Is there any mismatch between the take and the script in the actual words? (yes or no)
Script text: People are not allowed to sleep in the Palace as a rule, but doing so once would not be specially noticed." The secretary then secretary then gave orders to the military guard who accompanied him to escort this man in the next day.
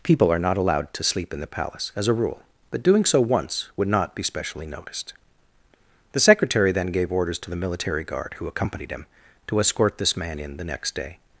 yes